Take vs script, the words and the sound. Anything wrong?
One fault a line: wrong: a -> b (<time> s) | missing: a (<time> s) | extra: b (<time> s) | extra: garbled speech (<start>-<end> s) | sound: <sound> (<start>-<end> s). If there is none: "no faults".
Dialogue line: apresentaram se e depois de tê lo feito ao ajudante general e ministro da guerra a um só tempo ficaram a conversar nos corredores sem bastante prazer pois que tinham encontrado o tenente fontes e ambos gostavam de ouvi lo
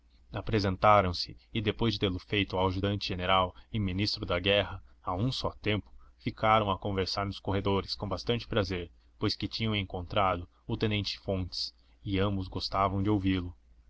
wrong: sem -> com (7.9 s)